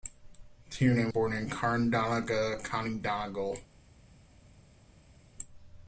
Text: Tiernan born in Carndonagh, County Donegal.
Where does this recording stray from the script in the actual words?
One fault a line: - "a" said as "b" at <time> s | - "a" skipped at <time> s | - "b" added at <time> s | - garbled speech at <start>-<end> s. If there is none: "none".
none